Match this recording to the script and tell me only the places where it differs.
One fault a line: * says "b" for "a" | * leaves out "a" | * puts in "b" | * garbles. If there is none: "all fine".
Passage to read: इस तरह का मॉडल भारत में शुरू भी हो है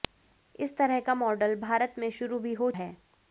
all fine